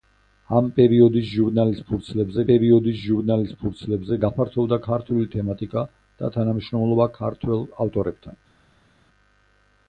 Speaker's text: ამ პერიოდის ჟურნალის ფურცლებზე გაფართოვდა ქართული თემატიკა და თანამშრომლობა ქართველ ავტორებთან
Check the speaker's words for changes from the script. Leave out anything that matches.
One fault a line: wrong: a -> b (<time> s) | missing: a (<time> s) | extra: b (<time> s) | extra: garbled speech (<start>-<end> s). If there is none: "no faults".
extra: პერიოდის ჟურნალის ფურცლებზე (2.5 s)